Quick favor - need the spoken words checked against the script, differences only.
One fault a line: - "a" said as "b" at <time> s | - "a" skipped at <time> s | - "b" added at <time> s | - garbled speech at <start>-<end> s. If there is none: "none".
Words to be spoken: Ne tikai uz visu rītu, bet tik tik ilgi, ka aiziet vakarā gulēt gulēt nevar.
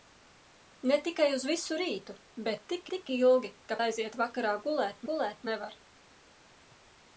none